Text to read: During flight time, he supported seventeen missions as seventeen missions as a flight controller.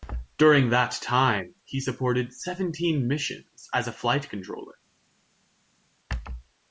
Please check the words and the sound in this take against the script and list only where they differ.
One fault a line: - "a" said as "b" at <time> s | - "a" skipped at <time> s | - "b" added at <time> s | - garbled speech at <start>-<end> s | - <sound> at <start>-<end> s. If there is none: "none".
- "flight" said as "that" at 0.7 s
- "seventeen missions as" skipped at 3.9 s